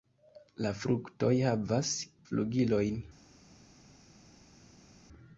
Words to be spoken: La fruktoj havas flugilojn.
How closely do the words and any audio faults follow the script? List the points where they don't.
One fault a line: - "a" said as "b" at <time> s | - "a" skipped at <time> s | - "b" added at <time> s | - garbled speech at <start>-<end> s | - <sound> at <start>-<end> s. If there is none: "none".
none